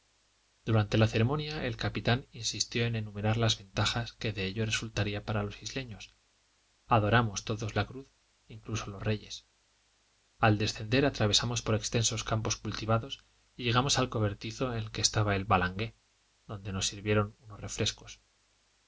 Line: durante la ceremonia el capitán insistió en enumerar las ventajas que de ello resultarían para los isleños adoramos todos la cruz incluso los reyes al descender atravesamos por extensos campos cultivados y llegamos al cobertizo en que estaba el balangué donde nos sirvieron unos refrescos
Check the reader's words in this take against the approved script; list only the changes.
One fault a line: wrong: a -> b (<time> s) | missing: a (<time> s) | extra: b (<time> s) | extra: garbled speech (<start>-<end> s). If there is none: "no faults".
no faults